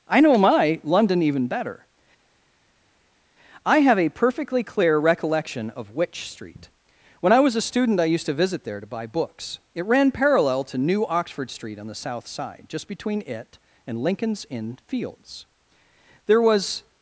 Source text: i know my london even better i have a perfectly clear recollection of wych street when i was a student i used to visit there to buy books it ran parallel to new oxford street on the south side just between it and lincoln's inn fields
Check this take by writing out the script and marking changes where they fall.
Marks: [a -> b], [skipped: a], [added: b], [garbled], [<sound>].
i know my london even better i have a perfectly clear recollection of wych street when i was a student i used to visit there to buy books it ran parallel to new oxford street on the south side just between it and lincoln's inn fields [added: there was]